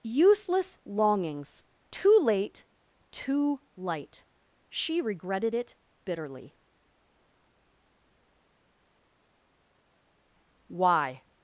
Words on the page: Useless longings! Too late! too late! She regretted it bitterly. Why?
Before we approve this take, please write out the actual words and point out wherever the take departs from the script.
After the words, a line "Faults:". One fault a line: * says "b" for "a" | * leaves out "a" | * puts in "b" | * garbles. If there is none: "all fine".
Useless longings! Too late! too light! She regretted it bitterly. Why?
Faults:
* says "light" for "late"